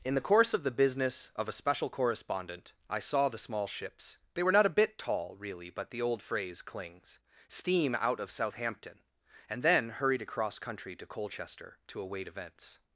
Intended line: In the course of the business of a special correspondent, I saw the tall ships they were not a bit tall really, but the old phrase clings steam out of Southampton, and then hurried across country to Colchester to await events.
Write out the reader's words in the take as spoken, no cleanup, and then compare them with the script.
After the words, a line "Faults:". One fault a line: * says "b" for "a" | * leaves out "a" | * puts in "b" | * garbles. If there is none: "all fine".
In the course of the business of a special correspondent, I saw the small ships they were not a bit tall really, but the old phrase clings steam out of Southampton, and then hurried across country to Colchester to await events.
Faults:
* says "small" for "tall"